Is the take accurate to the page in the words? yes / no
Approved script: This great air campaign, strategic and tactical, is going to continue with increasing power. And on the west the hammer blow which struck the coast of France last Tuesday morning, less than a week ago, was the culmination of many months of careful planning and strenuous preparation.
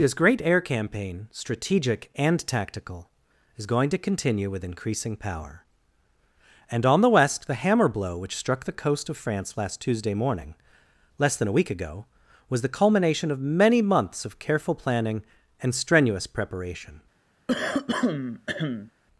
yes